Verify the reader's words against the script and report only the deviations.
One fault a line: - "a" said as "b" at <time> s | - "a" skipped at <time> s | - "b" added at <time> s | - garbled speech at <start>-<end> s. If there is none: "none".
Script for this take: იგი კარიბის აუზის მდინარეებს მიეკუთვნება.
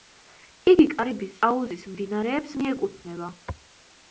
none